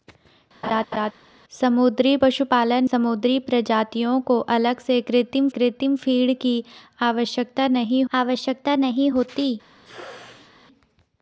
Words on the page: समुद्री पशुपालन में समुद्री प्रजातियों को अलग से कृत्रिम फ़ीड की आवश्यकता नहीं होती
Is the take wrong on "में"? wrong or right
wrong